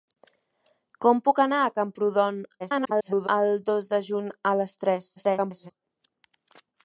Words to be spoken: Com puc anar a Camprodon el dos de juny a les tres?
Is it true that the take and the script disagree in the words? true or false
true